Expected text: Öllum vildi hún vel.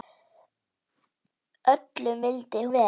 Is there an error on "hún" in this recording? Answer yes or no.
yes